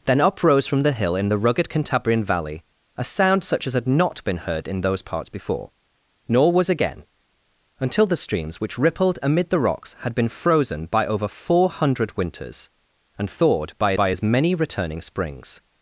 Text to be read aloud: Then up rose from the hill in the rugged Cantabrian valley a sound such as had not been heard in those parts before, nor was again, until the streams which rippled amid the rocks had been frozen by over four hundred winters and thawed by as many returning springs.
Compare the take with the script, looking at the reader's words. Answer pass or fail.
fail